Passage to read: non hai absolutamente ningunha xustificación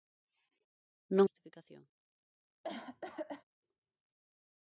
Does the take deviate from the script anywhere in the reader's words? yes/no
yes